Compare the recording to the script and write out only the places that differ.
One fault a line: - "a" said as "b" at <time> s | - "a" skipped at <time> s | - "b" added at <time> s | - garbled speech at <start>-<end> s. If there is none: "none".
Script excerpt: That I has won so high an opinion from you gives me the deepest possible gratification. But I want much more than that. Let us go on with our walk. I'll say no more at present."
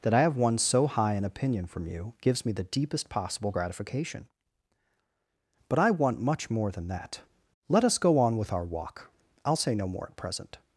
- "has" said as "have" at 0.2 s